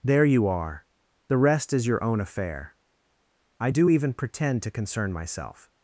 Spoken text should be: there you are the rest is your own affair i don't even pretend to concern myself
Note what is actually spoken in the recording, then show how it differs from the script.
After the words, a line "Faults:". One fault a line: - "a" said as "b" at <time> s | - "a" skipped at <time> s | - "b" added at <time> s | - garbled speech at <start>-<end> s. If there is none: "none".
there you are the rest is your own affair i do even pretend to concern myself
Faults:
- "don't" said as "do" at 3.7 s